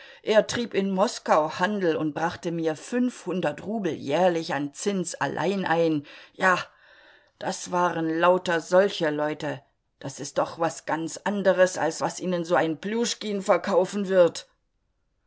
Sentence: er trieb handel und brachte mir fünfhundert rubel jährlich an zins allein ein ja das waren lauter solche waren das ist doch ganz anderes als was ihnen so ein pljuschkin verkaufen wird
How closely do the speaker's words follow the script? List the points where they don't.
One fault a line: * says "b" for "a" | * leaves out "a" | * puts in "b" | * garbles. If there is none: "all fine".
* puts in "in moskau"
* says "leute" for "waren"
* puts in "was"